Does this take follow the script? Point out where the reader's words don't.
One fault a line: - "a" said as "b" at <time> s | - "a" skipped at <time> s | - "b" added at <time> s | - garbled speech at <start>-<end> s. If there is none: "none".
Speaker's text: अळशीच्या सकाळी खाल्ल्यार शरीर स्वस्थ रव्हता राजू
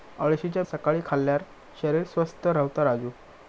none